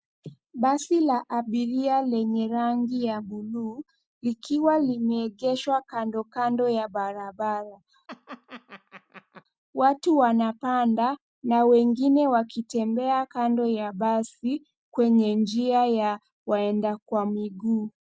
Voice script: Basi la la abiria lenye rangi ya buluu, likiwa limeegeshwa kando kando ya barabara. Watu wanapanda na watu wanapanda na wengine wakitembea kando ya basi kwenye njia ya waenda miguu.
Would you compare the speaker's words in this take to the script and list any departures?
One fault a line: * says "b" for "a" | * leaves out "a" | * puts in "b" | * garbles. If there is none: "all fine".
* leaves out "la"
* leaves out "watu wanapanda na"
* puts in "kwa"